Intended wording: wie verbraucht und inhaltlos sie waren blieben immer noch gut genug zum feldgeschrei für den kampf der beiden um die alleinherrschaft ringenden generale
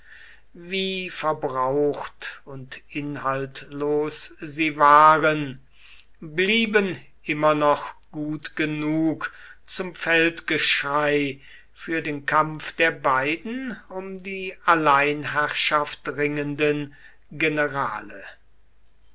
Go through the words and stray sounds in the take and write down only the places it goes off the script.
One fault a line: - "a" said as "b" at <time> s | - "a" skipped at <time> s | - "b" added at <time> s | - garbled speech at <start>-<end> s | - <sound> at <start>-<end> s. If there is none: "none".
none